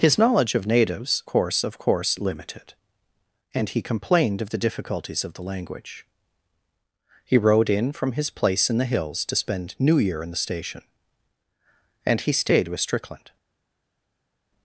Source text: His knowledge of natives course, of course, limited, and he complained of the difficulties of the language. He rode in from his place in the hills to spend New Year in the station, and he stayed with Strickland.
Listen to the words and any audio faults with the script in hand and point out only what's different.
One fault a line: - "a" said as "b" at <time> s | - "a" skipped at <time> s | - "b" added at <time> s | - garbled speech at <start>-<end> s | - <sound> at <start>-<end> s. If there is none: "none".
none